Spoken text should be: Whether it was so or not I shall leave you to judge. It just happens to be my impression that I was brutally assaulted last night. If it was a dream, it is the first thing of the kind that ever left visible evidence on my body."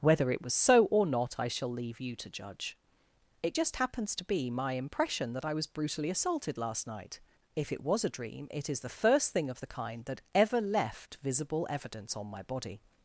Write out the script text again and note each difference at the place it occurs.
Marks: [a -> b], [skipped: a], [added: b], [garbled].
Whether it was so or not I shall leave you to judge. It just happens to be my impression that I was brutally assaulted last night. If it was a dream, it is the first thing of the kind that ever left visible evidence on my body."